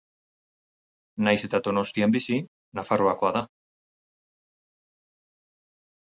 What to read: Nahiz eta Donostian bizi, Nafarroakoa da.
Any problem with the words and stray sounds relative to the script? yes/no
no